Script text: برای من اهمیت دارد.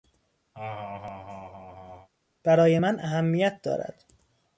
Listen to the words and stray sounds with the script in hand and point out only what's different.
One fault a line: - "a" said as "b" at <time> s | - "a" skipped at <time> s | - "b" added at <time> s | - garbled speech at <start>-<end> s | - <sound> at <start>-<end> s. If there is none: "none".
- laugh at 0.5-2.1 s